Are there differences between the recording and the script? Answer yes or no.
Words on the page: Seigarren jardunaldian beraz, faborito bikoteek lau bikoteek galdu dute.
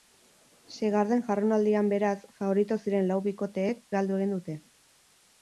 yes